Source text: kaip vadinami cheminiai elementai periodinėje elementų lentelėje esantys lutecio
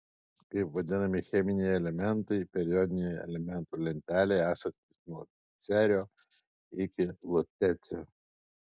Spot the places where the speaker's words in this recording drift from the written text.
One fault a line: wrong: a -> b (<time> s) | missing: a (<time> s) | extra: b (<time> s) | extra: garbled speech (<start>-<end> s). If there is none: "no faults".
extra: nuo cerio iki (5.1 s)